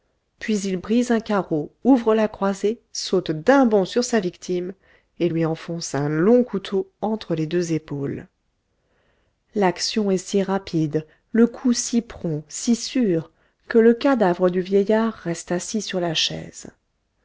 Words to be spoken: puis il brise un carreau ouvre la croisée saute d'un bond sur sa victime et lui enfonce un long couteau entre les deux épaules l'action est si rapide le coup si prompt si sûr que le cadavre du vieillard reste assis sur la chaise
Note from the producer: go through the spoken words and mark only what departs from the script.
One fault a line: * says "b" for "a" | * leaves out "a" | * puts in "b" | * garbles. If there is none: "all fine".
all fine